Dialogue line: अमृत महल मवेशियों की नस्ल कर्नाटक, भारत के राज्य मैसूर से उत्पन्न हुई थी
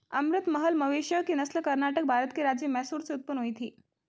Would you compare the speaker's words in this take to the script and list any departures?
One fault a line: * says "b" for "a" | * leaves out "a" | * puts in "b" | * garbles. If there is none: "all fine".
all fine